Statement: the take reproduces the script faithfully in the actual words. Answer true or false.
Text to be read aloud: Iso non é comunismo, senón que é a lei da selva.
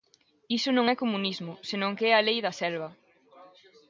true